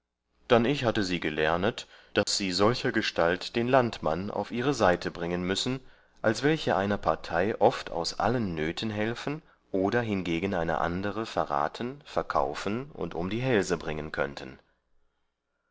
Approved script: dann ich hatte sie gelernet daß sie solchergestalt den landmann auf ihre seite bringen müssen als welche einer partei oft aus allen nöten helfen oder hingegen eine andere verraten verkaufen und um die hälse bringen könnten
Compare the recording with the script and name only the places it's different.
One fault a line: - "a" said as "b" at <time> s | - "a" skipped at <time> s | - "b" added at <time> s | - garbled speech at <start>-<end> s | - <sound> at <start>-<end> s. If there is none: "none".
- dropout at 2.2-2.3 s